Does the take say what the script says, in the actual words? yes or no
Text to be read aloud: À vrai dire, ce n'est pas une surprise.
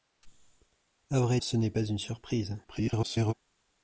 no